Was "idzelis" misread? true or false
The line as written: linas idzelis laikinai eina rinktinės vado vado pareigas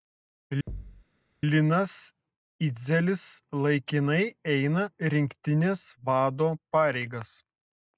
false